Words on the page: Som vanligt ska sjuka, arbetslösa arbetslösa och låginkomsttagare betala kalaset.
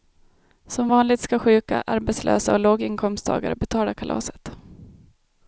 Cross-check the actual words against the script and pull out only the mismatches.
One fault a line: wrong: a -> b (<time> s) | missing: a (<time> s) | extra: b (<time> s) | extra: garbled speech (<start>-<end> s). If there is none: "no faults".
missing: arbetslösa (2.5 s)